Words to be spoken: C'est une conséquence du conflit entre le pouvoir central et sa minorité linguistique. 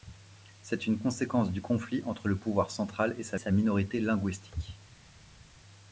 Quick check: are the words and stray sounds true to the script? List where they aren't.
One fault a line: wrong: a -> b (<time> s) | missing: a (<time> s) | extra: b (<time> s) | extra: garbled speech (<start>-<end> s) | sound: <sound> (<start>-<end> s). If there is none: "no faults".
extra: sa (3.4 s)